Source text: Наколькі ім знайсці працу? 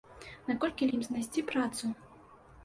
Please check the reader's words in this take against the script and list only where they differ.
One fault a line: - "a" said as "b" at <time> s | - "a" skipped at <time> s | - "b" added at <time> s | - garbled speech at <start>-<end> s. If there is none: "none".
none